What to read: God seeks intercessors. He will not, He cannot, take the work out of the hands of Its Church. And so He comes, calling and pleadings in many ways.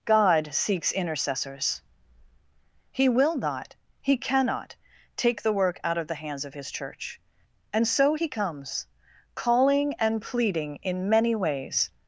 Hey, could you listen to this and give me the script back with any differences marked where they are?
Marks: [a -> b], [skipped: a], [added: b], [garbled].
God seeks intercessors. He will not, He cannot, take the work out of the hands of [Its -> His] Church. And so He comes, calling and [pleadings -> pleading] in many ways.